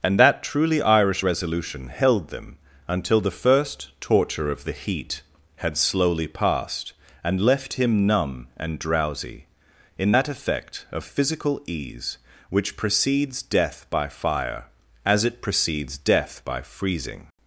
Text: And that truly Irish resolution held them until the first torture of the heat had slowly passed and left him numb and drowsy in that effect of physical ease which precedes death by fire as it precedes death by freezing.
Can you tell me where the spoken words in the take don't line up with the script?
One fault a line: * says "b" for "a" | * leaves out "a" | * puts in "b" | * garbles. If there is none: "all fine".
all fine